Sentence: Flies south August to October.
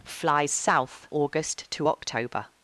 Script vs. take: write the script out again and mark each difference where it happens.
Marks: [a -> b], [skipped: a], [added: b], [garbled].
Flies south August to October.